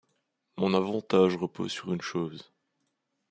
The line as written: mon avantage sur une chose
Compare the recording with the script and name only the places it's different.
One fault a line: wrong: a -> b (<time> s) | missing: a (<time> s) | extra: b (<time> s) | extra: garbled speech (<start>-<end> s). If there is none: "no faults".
extra: repose (1.4 s)